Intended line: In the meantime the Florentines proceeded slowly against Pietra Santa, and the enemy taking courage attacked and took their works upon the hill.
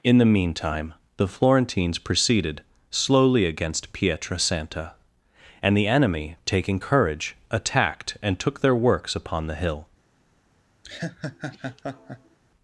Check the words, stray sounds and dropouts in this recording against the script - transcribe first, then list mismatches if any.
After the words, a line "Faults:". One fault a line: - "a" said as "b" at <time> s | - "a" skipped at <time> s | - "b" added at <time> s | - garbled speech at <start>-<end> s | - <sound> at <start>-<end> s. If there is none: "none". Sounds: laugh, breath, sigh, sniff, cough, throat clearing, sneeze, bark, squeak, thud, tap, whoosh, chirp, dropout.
In the meantime the Florentines proceeded slowly against Pietra Santa, and the enemy taking courage attacked and took their works upon the hill.
Faults:
- laugh at 10.8-12.4 s